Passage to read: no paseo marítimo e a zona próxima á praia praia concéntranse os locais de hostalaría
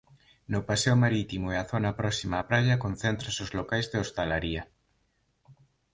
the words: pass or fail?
fail